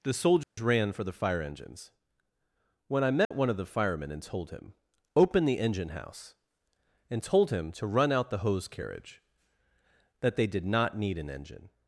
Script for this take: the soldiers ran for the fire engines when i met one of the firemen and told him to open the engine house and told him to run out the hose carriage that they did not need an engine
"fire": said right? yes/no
yes